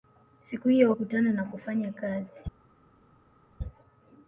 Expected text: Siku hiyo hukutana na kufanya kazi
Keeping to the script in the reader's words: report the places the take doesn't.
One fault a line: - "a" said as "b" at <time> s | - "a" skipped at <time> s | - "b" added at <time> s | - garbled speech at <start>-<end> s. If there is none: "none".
none